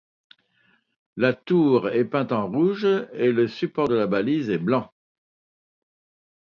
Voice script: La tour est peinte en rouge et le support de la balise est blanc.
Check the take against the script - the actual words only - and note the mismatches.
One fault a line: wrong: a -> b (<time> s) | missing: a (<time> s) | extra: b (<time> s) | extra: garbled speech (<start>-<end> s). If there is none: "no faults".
no faults